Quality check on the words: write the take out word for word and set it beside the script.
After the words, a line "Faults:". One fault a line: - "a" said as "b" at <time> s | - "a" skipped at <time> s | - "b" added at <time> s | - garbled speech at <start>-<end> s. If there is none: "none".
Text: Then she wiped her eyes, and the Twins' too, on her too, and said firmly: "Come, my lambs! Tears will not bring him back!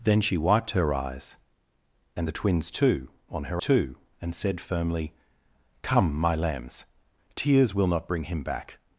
Then she wiped her eyes, and the Twins' too, on her too, and said firmly: "Come, my lambs! Tears will not bring him back!
Faults:
none